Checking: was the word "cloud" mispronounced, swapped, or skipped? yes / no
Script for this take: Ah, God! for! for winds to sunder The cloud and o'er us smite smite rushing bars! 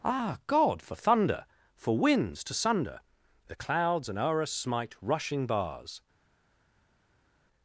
yes